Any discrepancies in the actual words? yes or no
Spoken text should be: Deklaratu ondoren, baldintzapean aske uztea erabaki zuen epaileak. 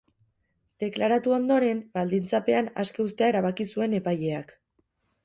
no